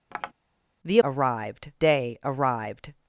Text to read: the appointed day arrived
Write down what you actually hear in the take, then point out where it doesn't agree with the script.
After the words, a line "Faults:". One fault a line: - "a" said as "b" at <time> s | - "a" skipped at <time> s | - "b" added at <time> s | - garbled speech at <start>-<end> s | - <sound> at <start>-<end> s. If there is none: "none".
the arrived day arrived
Faults:
- tap at 0.1-0.3 s
- "appointed" said as "arrived" at 1.0 s